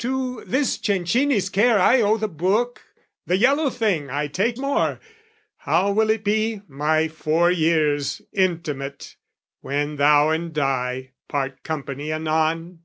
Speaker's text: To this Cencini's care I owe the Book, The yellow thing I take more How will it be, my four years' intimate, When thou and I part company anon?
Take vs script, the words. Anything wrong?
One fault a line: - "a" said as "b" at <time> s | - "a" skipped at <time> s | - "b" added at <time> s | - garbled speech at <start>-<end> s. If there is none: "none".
none